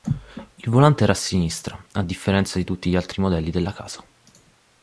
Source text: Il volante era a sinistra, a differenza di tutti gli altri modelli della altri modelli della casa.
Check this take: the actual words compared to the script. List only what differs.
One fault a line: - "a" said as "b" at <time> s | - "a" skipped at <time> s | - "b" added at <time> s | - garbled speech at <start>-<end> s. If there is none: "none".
- "altri modelli della" skipped at 3.7 s